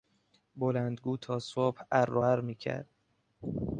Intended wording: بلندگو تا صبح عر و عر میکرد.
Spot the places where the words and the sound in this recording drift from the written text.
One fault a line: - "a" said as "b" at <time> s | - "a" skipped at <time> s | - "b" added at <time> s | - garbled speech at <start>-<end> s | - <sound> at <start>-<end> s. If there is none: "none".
none